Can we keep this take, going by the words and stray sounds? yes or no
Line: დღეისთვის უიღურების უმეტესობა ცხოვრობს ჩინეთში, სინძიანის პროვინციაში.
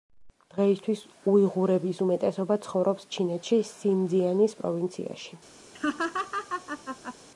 no